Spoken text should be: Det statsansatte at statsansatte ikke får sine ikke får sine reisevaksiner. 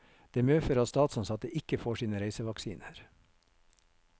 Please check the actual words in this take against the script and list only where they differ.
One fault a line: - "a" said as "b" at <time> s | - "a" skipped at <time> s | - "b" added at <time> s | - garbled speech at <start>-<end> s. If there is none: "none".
- "statsansatte" said as "medfører" at 0.4 s
- "ikke får sine" skipped at 2.2 s